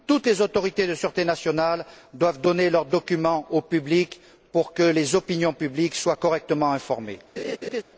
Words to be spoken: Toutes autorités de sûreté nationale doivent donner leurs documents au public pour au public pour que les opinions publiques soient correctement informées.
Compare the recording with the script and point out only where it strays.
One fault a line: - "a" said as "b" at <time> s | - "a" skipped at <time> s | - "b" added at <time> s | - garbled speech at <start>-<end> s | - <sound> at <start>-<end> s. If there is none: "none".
- "les" added at 0.3 s
- "au public pour" skipped at 4.7 s
- laugh at 7.4-7.8 s